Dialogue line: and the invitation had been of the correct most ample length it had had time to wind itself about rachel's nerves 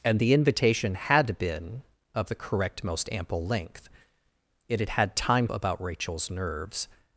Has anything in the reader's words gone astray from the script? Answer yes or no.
yes